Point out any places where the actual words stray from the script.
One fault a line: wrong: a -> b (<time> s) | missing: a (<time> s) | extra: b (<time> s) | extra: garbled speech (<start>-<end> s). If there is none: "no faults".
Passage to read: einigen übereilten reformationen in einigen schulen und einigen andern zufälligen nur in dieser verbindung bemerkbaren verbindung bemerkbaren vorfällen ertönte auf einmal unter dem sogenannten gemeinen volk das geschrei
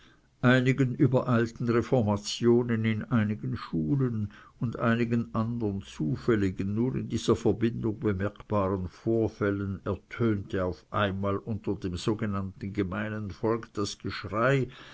missing: verbindung bemerkbaren (8.9 s)